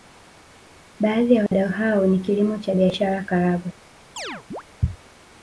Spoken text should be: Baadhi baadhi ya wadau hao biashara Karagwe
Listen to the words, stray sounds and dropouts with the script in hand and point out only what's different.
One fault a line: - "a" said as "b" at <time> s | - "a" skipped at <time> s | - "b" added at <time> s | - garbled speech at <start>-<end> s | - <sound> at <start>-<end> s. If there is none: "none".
- "baadhi" skipped at 1.3 s
- dropout at 1.5-1.5 s
- "ni kilimo cha" added at 2.0 s
- chirp at 4.2-4.6 s